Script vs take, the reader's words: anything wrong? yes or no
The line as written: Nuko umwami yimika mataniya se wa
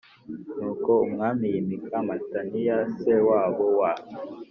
yes